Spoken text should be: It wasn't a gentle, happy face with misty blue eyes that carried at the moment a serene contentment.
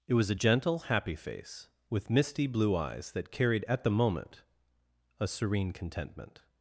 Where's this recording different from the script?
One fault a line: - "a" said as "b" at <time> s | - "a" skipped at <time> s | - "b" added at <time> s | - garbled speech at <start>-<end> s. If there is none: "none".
- "wasn't" said as "was" at 0.1 s